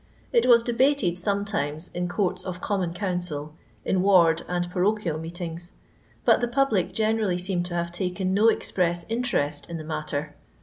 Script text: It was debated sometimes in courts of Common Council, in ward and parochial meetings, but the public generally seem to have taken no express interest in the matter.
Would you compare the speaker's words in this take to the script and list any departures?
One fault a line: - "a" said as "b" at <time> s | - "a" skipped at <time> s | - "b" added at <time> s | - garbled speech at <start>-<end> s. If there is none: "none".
none